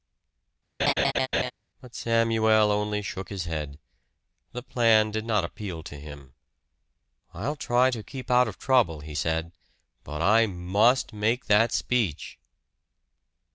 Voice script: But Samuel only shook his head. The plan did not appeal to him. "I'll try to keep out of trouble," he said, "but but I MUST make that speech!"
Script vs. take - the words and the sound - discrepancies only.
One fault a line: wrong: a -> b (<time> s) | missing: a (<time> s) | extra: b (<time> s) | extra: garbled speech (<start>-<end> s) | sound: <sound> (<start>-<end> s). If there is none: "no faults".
sound: laugh (0.8-1.5 s)
missing: but (10.2 s)